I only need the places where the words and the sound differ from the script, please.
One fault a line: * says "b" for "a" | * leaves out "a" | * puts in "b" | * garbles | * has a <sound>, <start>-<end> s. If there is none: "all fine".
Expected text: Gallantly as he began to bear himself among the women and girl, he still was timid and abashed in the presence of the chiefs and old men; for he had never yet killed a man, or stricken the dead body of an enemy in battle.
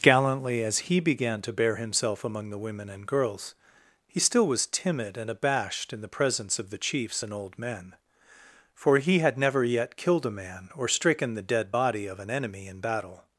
* says "girls" for "girl"